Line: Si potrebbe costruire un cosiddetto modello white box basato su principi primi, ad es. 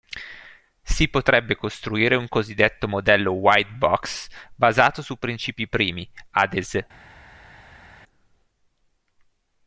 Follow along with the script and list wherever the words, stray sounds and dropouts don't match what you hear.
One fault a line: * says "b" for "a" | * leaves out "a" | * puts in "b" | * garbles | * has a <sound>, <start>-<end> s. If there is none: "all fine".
all fine